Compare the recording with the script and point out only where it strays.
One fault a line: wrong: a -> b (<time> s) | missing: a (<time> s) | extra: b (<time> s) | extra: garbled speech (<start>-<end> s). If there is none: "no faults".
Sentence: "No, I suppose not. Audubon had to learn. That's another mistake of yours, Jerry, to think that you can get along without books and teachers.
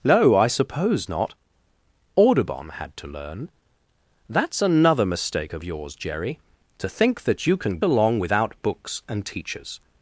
missing: get (7.8 s)